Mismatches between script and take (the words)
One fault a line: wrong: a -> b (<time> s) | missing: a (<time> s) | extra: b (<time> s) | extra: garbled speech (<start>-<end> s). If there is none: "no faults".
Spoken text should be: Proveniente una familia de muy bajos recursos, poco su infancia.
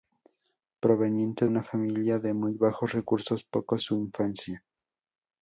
no faults